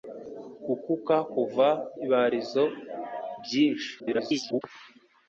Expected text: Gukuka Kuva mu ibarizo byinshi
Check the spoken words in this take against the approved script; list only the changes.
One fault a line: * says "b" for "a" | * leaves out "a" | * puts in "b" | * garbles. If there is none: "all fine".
* leaves out "mu"
* garbles